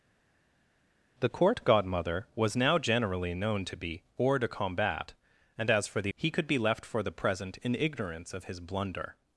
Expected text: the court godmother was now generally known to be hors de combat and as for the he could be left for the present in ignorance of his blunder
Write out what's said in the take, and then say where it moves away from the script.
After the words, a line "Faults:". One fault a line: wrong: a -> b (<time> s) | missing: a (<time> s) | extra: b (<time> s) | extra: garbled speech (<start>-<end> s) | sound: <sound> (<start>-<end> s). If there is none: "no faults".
the court godmother was now generally known to be hors de combat and as for the he could be left for the present in ignorance of his blunder
Faults:
no faults